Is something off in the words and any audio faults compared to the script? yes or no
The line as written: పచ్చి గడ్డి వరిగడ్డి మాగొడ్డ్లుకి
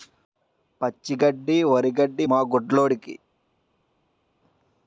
no